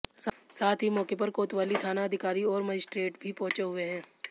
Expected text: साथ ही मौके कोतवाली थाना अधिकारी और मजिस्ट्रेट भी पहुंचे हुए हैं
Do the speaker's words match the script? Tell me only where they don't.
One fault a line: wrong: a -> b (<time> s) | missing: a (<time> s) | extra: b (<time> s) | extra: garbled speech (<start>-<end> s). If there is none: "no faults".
extra: पर (1.1 s)